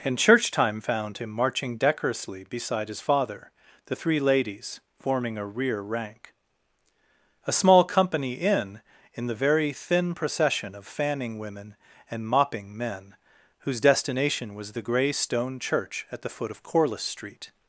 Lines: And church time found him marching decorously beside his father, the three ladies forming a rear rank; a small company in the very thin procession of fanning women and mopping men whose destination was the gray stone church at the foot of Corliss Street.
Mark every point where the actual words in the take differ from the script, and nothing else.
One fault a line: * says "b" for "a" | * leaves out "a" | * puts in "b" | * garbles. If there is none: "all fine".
* puts in "in"